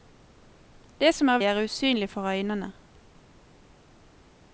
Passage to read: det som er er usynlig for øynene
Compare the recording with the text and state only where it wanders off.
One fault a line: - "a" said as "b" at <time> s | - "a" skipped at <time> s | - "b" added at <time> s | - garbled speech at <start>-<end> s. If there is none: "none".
none